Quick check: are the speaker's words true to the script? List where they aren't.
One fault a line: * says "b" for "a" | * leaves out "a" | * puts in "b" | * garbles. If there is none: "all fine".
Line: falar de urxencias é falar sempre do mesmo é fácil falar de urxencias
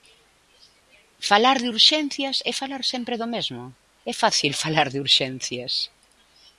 all fine